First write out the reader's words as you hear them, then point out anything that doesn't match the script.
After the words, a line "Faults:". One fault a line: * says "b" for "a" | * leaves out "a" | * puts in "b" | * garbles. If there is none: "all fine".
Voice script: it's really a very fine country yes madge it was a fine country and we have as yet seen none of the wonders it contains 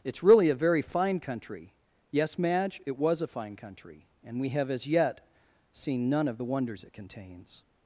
it's really a very fine country yes madge it was a fine country and we have as yet seen none of the wonders it contains
Faults:
all fine